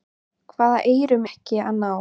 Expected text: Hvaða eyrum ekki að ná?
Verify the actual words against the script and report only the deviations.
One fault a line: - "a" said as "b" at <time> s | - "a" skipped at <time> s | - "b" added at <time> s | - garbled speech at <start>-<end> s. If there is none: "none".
none